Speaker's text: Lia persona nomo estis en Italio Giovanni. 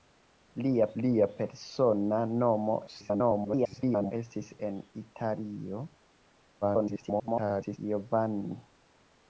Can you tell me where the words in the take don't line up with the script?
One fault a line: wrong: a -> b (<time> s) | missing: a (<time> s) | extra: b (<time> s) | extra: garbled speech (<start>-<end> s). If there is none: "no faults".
extra: lia (1.0 s)
extra: garbled speech (2.9-4.1 s)
extra: garbled speech (6.6-7.8 s)